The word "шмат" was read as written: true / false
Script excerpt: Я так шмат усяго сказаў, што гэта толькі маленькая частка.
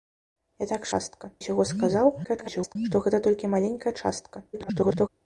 false